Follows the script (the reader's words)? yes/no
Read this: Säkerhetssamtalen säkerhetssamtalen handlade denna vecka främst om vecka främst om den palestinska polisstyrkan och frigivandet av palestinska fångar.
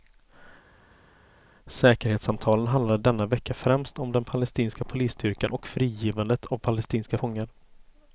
no